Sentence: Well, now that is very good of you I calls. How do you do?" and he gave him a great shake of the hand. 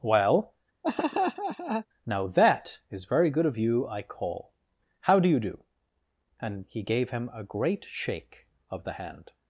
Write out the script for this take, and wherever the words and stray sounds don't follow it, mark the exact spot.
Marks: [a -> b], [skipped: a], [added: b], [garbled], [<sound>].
Well, [laugh] now that is very good of you I [calls. -> call] How do you do?" and he gave him a great shake of the hand.